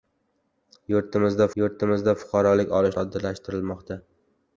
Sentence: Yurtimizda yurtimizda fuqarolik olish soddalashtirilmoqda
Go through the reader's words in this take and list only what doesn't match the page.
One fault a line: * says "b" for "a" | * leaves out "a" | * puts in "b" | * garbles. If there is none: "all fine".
all fine